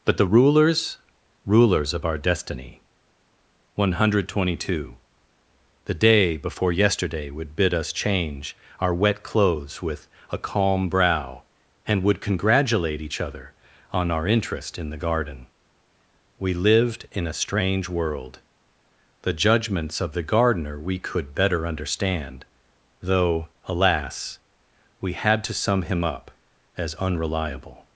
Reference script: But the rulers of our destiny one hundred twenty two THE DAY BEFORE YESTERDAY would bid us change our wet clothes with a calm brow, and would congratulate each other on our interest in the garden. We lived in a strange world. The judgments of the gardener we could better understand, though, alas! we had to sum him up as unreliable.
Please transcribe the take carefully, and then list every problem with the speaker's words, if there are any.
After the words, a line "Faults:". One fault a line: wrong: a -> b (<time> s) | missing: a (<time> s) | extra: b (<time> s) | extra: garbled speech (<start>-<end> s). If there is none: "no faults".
But the rulers rulers of our destiny one hundred twenty two THE DAY BEFORE YESTERDAY would bid us change our wet clothes with a calm brow, and would congratulate each other on our interest in the garden. We lived in a strange world. The judgments of the gardener we could better understand, though, alas! we had to sum him up as unreliable.
Faults:
extra: rulers (1.4 s)